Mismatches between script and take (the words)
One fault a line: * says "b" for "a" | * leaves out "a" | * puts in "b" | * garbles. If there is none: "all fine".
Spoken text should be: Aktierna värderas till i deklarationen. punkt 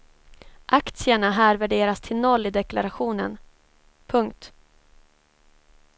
* puts in "här"
* puts in "noll"